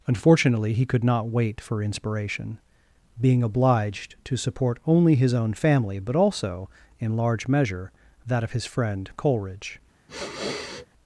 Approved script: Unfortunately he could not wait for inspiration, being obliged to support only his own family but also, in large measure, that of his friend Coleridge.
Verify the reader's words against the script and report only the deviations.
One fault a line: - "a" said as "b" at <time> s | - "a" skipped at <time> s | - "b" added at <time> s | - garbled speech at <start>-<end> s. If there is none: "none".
none